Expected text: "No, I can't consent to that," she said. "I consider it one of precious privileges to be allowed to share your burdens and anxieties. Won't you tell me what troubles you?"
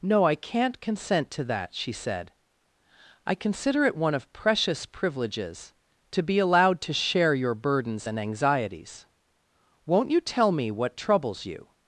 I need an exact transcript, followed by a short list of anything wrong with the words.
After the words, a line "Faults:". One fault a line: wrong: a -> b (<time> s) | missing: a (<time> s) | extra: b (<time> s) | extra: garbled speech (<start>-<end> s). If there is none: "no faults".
"No, I can't consent to that," she said. "I consider it one of precious privileges to be allowed to share your burdens and anxieties. Won't you tell me what troubles you?"
Faults:
no faults